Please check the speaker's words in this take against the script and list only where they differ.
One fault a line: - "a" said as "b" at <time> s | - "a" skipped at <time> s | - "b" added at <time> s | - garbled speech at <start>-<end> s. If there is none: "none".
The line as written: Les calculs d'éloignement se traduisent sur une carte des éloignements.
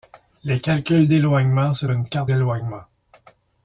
- "traduisent sur" skipped at 1.9 s
- "des" skipped at 2.3 s